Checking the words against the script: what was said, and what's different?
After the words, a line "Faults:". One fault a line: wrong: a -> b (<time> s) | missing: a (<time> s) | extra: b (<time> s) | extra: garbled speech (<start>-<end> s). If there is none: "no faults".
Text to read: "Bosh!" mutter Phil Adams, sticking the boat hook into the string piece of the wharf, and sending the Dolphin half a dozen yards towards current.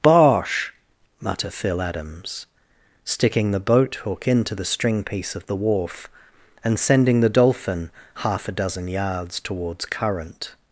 "Bosh!" mutter Phil Adams, sticking the boat hook into the string piece of the wharf, and sending the Dolphin half a dozen yards towards current.
Faults:
no faults